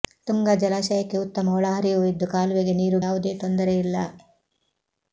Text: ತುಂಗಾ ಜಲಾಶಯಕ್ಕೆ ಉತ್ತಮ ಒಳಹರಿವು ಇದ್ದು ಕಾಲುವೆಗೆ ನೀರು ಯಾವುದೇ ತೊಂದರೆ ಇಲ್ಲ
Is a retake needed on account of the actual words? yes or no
no